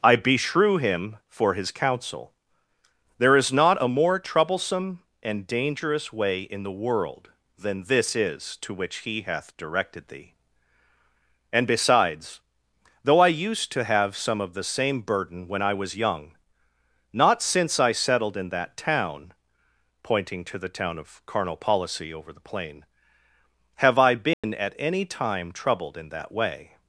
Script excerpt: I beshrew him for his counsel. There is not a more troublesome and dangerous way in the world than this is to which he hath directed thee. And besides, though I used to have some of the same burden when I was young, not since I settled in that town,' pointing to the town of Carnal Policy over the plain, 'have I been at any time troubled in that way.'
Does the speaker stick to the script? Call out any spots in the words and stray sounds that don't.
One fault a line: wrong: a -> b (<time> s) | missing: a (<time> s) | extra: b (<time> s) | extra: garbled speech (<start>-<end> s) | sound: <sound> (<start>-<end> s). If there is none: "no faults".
sound: dropout (24.3-24.4 s)